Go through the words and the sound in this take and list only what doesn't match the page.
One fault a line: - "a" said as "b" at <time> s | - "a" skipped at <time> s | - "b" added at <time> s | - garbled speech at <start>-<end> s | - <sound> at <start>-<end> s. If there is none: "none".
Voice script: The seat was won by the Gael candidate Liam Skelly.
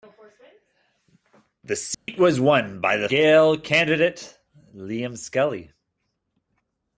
- dropout at 1.9-2.1 s